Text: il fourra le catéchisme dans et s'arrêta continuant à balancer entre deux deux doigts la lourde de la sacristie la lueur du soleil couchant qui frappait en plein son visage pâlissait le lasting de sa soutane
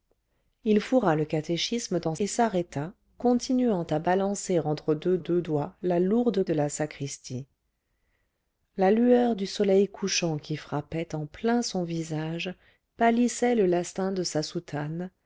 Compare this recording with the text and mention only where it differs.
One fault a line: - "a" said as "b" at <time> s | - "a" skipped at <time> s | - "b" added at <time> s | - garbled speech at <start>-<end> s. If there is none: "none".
none